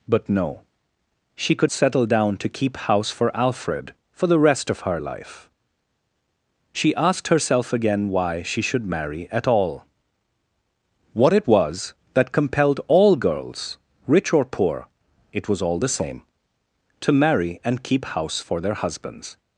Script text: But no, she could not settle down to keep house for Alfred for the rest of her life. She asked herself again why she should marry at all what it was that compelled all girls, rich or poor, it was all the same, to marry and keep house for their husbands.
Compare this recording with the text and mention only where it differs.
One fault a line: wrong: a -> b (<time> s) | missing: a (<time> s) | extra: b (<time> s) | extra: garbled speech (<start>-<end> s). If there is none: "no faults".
missing: not (1.7 s)